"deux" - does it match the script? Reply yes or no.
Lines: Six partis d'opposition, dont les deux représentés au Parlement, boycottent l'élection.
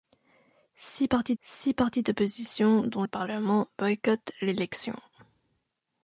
no